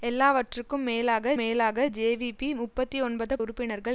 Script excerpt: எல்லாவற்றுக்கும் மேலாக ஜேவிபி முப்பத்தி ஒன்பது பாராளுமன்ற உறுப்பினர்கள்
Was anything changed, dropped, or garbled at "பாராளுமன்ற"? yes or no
yes